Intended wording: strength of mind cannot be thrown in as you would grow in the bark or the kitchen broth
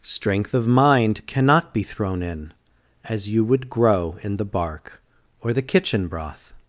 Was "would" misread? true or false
false